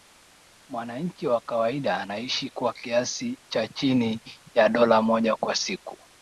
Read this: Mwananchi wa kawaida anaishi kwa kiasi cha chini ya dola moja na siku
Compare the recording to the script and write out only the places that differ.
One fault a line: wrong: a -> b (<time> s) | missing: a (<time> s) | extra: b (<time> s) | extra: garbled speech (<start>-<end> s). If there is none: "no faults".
wrong: na -> kwa (5.3 s)